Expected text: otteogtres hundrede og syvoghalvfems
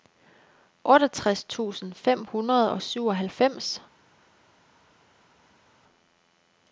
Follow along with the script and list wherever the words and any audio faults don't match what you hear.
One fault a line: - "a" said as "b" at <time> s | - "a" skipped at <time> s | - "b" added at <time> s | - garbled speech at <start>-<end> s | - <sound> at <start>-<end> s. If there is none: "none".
- "tusind fem" added at 1.4 s